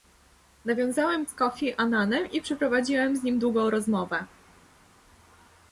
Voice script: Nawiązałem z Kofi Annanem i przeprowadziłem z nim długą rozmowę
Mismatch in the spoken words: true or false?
false